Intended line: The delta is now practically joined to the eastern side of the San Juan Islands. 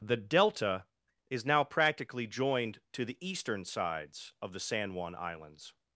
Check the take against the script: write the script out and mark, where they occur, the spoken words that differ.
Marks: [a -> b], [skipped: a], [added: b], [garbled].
The delta is now practically joined to the eastern [side -> sides] of the San Juan Islands.